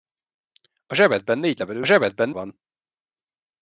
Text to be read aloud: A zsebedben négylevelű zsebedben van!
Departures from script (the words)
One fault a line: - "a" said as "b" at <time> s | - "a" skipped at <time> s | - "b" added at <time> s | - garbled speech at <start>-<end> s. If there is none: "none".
none